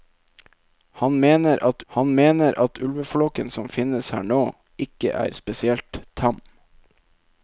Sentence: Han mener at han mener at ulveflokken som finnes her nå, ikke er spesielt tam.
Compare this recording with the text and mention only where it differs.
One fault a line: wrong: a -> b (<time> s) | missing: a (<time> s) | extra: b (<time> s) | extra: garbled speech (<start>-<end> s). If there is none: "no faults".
no faults